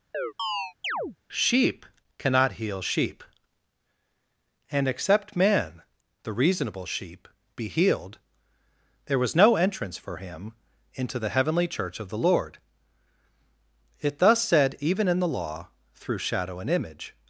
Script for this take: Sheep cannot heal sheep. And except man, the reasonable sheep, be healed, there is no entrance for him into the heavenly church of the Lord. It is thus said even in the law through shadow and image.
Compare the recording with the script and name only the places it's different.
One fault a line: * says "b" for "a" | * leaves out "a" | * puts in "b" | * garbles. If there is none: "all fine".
* says "was" for "is"
* leaves out "is"